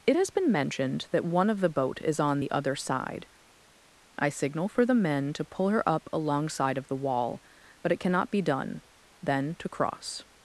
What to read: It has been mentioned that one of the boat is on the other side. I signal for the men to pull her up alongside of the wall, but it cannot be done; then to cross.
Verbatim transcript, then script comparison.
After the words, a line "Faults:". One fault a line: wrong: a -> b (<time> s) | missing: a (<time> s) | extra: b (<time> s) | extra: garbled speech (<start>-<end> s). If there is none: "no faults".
It has been mentioned that one of the boat is on the other side. I signal for the men to pull her up alongside of the wall, but it cannot be done; then to cross.
Faults:
no faults